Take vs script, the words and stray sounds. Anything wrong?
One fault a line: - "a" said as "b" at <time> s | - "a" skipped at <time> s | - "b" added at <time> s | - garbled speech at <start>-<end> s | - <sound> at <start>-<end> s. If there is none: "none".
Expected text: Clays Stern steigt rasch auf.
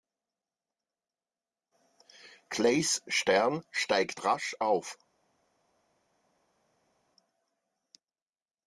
none